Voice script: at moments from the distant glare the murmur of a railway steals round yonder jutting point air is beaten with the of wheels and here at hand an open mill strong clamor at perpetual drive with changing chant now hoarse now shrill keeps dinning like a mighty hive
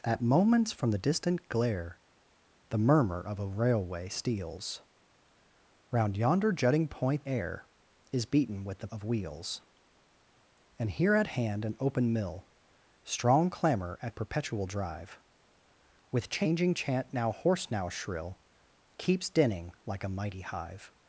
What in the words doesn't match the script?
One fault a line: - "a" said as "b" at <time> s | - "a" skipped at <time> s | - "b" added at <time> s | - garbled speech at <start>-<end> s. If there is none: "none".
none